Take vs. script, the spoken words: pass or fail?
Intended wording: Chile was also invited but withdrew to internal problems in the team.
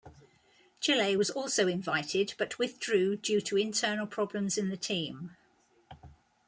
fail